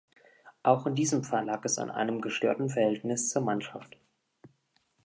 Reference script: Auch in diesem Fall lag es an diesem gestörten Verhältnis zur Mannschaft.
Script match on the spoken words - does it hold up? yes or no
no